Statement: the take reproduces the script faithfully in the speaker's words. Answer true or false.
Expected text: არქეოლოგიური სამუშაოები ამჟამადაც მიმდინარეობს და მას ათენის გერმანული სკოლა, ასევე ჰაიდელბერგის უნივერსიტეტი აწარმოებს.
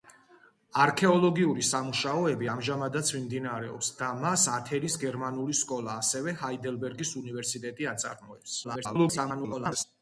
false